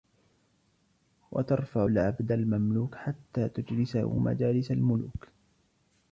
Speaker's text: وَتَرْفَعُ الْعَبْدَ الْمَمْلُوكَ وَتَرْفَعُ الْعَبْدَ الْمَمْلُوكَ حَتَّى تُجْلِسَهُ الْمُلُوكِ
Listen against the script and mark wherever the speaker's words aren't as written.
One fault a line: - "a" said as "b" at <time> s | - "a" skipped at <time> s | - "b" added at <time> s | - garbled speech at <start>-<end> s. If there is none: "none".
- "وَتَرْفَعُ الْعَبْدَ الْمَمْلُوكَ" skipped at 2.9 s
- "مَجَالِسَ" added at 4.2 s